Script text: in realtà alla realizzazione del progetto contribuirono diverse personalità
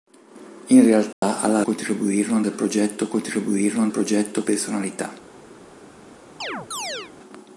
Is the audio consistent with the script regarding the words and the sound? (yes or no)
no